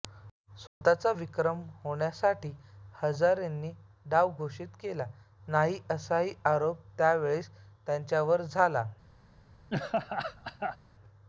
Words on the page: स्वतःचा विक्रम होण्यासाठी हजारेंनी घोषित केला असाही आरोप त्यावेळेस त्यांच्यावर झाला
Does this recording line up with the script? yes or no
no